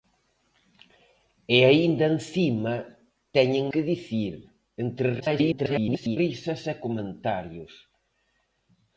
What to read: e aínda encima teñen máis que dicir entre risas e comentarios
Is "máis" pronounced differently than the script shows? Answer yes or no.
yes